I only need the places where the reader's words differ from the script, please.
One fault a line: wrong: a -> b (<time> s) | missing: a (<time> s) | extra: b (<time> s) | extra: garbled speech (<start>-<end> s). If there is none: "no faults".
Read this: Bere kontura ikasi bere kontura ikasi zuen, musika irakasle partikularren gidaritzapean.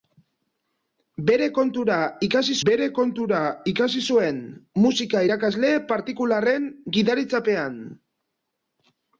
no faults